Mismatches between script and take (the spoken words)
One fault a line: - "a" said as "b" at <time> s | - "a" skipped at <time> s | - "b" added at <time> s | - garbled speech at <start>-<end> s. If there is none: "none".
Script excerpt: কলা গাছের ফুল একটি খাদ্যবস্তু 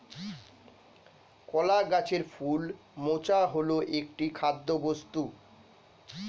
- "মোচা হল" added at 3.0 s